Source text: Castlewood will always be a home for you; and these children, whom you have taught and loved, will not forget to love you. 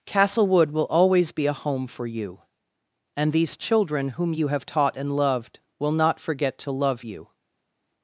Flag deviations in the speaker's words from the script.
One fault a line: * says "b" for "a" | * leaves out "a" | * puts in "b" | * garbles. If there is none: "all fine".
all fine